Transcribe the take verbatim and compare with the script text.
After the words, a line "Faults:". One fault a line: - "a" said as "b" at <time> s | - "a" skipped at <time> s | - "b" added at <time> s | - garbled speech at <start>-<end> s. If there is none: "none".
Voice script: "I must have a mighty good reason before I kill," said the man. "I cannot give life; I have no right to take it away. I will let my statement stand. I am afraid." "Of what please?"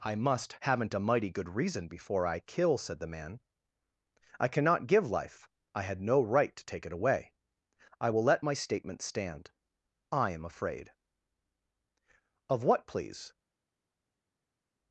"I must haven't a mighty good reason before I kill," said the man. "I cannot give life; I had no right to take it away. I will let my statement stand. I am afraid." "Of what please?"
Faults:
- "have" said as "haven't" at 0.6 s
- "have" said as "had" at 5.8 s